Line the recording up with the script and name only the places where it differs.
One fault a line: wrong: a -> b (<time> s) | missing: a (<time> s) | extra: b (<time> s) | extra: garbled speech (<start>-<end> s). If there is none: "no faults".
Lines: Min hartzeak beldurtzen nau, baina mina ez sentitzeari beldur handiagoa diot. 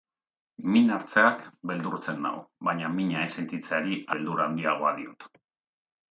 no faults